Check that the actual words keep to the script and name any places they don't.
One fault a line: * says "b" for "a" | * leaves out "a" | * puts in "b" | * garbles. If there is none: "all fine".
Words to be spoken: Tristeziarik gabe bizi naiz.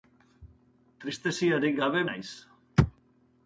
* leaves out "bizi"